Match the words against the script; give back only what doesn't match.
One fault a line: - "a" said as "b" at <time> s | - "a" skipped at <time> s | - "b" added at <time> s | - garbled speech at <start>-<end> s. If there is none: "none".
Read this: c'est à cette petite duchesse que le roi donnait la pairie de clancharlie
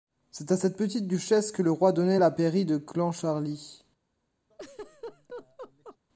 none